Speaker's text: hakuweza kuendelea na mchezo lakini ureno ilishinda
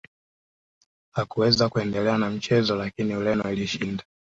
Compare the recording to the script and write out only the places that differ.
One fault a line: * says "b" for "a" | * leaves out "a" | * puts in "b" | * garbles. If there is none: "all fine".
all fine